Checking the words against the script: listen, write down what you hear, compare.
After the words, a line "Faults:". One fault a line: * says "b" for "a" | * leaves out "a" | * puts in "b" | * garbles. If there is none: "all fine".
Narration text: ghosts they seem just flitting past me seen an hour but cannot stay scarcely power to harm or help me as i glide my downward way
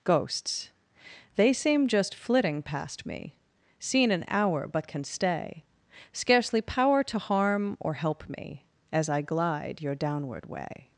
ghosts they seem just flitting past me seen an hour but can stay scarcely power to harm or help me as i glide your downward way
Faults:
* says "can" for "cannot"
* says "your" for "my"